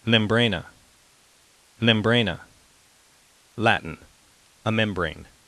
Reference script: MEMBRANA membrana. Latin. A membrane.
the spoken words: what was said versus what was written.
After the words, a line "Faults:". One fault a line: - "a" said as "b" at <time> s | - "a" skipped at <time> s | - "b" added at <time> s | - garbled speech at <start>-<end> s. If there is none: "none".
MEMBRANA membrana. Latin. A membrane.
Faults:
none